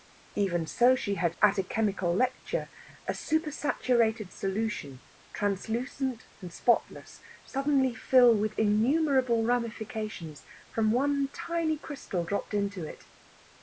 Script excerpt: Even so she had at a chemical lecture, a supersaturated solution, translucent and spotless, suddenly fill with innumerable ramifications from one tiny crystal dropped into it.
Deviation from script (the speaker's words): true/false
false